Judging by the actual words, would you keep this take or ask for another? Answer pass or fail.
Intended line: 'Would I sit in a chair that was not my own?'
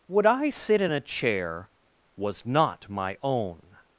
fail